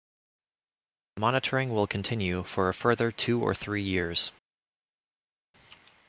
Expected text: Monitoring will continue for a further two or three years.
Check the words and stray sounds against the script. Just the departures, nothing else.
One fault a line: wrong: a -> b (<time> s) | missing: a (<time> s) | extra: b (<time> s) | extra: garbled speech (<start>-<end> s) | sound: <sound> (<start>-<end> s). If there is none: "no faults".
no faults